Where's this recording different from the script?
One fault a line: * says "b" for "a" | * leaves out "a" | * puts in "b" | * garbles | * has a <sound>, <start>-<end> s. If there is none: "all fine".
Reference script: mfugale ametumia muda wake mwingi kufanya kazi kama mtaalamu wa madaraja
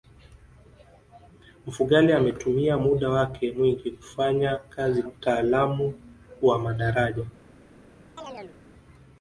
* leaves out "kama"
* has a chirp, 8.2-8.6 s